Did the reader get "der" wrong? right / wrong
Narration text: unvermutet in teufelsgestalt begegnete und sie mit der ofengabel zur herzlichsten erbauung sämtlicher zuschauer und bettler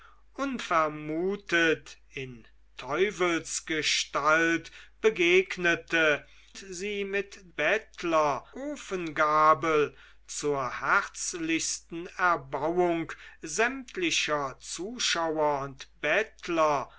wrong